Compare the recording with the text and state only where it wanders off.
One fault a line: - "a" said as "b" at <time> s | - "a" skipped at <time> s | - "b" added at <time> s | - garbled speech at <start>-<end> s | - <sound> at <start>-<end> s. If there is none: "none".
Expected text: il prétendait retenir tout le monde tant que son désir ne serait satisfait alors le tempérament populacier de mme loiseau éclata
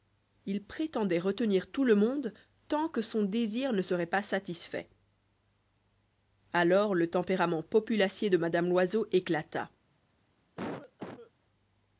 - "pas" added at 4.1 s
- cough at 10.6-11.3 s